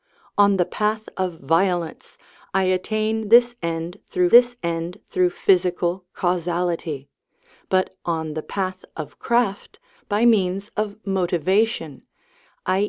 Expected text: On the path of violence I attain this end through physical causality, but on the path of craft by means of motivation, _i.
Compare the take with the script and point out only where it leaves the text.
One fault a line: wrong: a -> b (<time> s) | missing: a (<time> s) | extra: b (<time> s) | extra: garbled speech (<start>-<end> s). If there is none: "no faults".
extra: this end through (4.3 s)